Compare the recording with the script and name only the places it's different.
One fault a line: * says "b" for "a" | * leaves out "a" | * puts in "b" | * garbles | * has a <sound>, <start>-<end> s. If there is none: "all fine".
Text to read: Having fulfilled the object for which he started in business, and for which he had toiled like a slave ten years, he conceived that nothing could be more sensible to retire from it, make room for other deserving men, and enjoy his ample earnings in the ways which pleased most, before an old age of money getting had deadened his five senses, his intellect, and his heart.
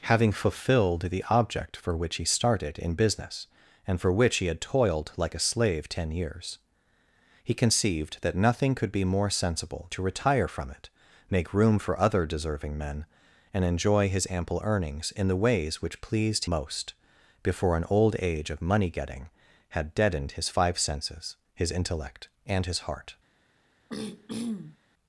* has a throat clearing, 23.9-24.8 s